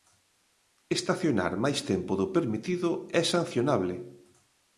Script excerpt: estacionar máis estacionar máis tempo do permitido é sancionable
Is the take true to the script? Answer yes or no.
no